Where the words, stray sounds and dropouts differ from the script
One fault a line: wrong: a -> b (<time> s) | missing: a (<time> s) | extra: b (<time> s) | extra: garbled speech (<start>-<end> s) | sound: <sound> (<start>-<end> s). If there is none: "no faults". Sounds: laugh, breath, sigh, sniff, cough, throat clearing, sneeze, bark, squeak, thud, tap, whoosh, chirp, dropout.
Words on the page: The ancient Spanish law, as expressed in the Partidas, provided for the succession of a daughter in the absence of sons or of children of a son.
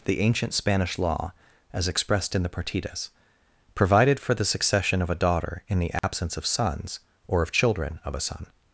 sound: dropout (6.0-6.0 s)